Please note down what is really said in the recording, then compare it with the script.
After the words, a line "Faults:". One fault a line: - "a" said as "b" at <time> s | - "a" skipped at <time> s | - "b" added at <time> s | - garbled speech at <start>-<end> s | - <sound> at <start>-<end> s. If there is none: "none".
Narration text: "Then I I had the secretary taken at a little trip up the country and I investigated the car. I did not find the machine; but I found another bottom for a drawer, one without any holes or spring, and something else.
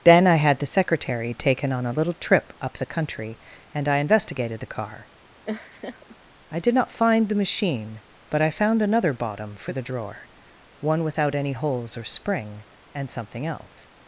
"Then I had the secretary taken on a little trip up the country and I investigated the car. I did not find the machine; but I found another bottom for the drawer, one without any holes or spring, and something else.
Faults:
- "I" skipped at 0.4 s
- "at" said as "on" at 1.7 s
- laugh at 5.4-6.2 s
- "a" said as "the" at 9.7 s